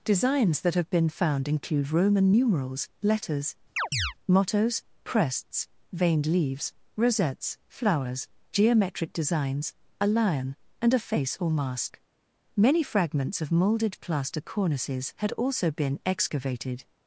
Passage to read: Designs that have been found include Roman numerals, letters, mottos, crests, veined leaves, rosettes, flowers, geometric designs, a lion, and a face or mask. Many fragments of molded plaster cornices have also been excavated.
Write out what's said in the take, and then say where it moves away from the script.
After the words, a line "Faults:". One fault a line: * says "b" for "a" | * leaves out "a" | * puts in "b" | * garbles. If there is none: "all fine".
Designs that have been found include Roman numerals, letters, mottos, crests, veined leaves, rosettes, flowers, geometric designs, a lion, and a face or mask. Many fragments of molded plaster cornices had also been excavated.
Faults:
* says "had" for "have"